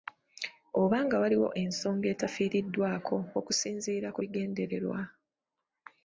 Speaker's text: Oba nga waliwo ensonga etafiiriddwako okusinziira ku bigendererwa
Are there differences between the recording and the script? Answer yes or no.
no